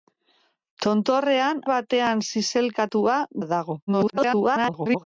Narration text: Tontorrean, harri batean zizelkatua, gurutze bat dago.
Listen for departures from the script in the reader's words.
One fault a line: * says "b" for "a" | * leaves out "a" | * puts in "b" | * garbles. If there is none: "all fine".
* leaves out "harri"
* leaves out "gurutze"
* garbles